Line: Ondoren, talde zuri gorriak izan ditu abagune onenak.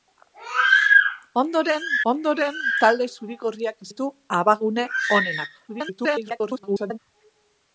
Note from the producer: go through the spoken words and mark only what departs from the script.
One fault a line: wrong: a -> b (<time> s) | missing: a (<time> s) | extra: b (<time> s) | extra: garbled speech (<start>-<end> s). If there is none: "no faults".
extra: ondoren (2.1 s)
missing: izan (3.9 s)
extra: garbled speech (5.7-7.0 s)